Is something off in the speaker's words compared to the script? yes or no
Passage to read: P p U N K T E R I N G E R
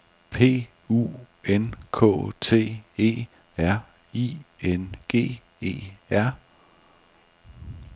yes